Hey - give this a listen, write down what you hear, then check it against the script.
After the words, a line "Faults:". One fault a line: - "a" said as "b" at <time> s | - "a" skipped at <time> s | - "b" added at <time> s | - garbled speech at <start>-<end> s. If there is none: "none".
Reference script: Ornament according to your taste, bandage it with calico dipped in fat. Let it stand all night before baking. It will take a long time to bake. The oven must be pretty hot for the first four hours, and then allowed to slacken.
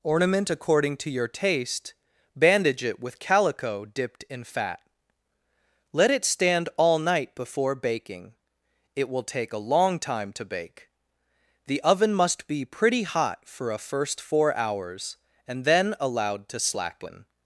Ornament according to your taste, bandage it with calico dipped in fat. Let it stand all night before baking. It will take a long time to bake. The oven must be pretty hot for a first four hours, and then allowed to slacken.
Faults:
- "the" said as "a" at 13.7 s